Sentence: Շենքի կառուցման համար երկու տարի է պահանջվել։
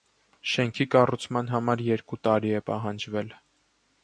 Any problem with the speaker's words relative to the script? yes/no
no